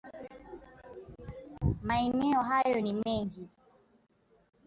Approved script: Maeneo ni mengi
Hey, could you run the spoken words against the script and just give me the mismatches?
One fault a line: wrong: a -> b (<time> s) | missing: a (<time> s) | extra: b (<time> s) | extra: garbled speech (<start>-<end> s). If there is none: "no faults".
extra: hayo (2.4 s)